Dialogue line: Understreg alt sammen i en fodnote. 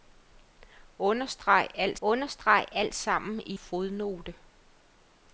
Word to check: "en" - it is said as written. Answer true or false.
false